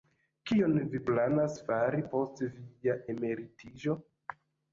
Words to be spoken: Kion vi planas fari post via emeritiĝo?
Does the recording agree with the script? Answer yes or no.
yes